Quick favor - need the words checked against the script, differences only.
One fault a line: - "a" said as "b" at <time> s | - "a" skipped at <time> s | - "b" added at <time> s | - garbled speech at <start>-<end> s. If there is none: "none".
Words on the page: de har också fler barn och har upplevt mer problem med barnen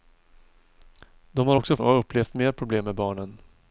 - "fler barn" skipped at 1.8 s